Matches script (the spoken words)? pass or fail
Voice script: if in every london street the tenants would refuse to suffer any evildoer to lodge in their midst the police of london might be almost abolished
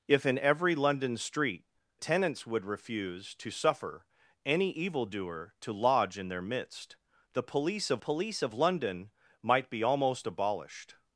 fail